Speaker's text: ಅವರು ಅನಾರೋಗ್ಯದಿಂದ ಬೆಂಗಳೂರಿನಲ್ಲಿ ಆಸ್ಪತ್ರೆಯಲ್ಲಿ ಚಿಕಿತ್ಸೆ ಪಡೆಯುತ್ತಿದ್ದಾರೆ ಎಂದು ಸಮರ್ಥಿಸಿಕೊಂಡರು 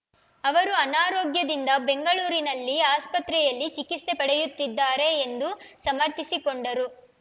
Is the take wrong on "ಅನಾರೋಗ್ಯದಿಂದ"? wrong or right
right